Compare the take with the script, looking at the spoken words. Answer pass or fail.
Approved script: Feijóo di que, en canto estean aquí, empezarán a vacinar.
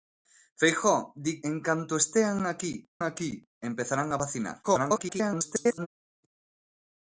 fail